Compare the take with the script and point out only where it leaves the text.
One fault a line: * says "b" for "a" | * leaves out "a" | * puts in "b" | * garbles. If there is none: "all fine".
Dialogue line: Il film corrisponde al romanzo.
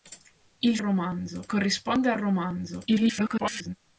* says "romanzo" for "film"
* garbles